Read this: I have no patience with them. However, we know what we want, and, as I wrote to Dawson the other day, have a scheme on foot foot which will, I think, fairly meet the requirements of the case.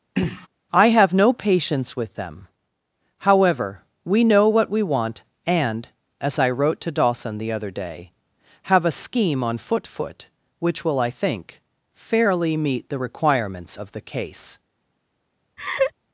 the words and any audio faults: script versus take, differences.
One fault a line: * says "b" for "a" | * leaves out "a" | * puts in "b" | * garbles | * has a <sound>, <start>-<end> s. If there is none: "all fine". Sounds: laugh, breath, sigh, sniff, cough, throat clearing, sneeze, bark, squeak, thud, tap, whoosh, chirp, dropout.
* has a throat clearing, 0.2-0.5 s
* has a laugh, 15.6-15.9 s